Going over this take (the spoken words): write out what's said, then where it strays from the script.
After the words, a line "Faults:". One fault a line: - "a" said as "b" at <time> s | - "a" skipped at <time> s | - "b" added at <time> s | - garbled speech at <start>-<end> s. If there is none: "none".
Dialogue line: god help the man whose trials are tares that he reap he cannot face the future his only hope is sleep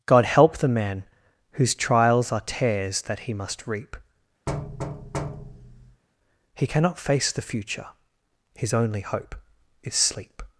god help the man whose trials are tares that he must reap he cannot face the future his only hope is sleep
Faults:
- "must" added at 3.3 s